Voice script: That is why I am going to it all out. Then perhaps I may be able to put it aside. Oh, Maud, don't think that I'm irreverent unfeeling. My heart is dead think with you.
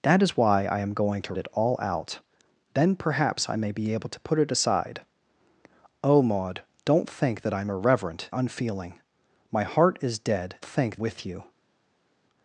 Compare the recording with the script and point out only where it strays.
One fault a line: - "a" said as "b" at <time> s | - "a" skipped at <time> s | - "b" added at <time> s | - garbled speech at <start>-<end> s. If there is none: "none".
none